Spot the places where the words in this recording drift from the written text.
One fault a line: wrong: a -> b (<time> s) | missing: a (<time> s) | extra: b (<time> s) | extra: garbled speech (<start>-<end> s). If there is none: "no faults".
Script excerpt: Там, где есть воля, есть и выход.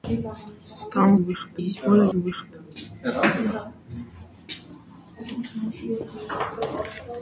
wrong: где -> выход (1.2 s)
missing: есть (2.1 s)